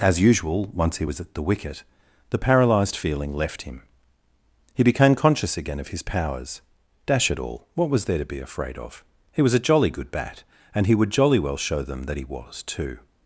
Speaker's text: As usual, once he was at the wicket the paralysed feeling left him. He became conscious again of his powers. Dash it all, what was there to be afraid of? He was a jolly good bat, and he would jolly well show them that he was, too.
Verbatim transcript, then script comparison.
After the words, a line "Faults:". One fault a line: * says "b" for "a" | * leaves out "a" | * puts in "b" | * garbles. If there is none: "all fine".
As usual, once he was at the wicket the paralysed feeling left him. He became conscious again of his powers. Dash it all, what was there to be afraid of? He was a jolly good bat, and he would jolly well show them that he was, too.
Faults:
all fine